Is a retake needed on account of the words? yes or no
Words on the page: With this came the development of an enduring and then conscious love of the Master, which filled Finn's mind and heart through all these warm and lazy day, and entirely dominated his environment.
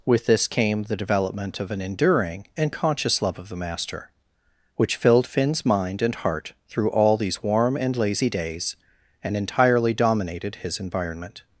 yes